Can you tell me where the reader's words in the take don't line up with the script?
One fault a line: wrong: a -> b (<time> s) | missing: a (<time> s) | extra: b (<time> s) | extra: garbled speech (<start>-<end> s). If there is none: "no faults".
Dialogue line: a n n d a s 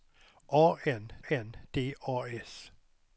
no faults